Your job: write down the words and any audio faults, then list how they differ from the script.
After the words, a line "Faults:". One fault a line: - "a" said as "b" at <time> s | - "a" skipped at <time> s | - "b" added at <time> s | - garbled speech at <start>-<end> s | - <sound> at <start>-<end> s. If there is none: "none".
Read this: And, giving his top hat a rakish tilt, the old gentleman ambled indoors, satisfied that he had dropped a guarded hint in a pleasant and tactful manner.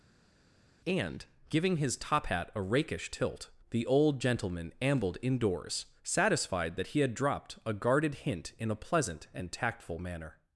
And, giving his top hat a rakish tilt, the old gentleman ambled indoors, satisfied that he had dropped a guarded hint in a pleasant and tactful manner.
Faults:
none